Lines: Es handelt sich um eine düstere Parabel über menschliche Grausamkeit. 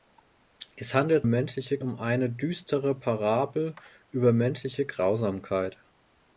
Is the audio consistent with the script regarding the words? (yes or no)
no